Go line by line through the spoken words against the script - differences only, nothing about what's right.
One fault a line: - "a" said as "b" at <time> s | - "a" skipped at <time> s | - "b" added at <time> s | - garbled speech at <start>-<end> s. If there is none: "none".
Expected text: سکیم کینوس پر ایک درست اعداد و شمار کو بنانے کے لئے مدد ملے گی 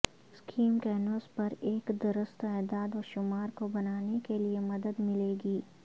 none